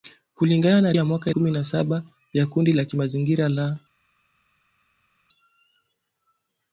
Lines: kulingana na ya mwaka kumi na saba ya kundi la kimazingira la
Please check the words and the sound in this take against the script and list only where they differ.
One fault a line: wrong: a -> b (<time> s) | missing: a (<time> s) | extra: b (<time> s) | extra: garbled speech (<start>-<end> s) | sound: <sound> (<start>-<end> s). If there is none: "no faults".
no faults